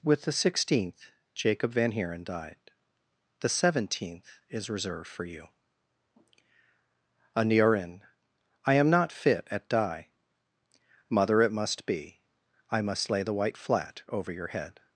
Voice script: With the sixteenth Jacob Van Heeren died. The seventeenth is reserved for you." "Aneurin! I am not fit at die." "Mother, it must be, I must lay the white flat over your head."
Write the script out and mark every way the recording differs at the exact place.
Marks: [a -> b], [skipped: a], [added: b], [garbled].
With the sixteenth Jacob Van Heeren died. The seventeenth is reserved for you." "Aneurin! I am not fit at die." "Mother, it must be, I must lay the white flat over your head."